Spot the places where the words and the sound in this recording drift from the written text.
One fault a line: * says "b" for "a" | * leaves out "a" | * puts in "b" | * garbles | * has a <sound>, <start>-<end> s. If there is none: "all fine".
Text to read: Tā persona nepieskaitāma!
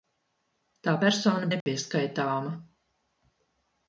* has a dropout, 1.6-1.7 s